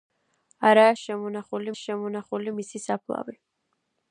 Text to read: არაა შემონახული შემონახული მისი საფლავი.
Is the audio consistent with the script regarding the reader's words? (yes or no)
yes